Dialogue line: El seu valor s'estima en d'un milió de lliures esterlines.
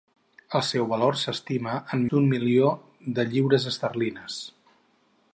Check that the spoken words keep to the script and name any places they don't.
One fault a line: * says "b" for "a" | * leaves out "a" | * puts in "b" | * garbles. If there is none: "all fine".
all fine